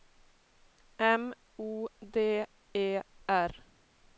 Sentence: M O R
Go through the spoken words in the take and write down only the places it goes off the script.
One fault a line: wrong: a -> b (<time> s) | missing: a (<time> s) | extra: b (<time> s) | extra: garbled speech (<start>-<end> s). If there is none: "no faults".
extra: D E (2.0 s)